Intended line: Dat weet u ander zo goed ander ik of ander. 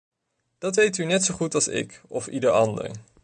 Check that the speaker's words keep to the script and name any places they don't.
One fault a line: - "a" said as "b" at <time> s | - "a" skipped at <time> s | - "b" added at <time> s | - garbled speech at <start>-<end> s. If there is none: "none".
- "ander" said as "net" at 1.0 s
- "ander" said as "als" at 1.5 s
- "ieder" added at 2.3 s